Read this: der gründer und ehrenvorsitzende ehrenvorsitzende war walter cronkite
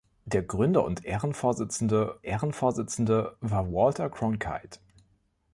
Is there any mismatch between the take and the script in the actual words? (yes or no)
no